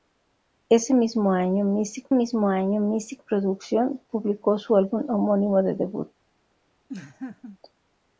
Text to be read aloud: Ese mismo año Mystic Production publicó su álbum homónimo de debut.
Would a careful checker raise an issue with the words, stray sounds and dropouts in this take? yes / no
yes